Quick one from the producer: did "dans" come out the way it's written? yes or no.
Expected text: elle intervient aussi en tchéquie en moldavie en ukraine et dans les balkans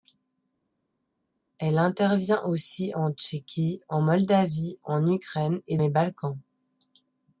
no